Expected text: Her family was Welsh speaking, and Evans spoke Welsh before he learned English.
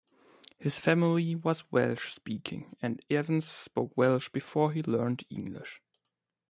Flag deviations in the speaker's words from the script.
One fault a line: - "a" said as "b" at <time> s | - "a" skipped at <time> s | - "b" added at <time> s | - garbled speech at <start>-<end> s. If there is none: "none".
- "Her" said as "His" at 0.6 s